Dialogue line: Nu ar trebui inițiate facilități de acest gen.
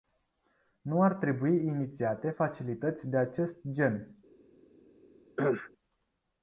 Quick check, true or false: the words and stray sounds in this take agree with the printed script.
false